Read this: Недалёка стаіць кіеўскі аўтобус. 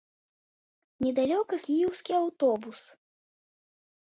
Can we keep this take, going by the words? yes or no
no